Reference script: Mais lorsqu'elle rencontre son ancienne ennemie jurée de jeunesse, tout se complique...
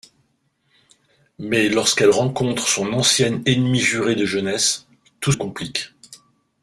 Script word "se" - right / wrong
wrong